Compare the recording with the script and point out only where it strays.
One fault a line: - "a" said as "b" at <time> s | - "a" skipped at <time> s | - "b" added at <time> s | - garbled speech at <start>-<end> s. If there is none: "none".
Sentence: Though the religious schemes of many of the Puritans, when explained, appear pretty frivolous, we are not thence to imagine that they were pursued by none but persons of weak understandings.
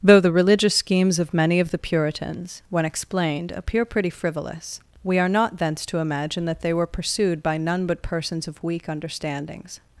none